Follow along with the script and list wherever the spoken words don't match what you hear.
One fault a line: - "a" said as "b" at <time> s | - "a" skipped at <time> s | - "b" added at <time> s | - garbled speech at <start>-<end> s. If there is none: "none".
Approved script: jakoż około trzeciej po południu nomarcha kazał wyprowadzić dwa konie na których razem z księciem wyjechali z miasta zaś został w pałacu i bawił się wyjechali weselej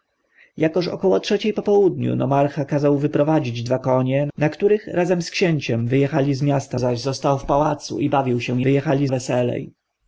none